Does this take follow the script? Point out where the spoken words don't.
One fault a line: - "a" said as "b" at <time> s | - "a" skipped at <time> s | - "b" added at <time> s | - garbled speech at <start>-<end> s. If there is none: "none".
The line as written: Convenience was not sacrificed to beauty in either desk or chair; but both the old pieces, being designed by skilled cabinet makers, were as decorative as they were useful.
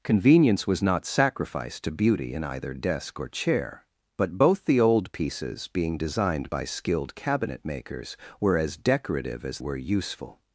- "they" skipped at 9.6 s